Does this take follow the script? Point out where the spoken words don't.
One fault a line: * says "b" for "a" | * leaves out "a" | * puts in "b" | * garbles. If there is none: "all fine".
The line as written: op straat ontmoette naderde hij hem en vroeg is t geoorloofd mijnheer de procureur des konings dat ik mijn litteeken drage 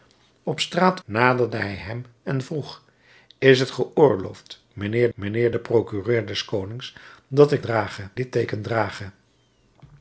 * leaves out "ontmoette"
* puts in "mijnheer"
* says "drage" for "mijn"